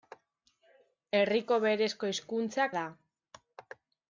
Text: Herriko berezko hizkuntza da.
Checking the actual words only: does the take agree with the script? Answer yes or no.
yes